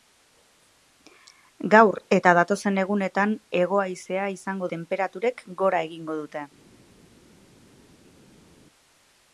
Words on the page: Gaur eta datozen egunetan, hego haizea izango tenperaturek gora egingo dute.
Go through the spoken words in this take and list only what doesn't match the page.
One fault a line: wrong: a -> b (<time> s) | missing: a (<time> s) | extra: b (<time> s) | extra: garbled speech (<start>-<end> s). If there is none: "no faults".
no faults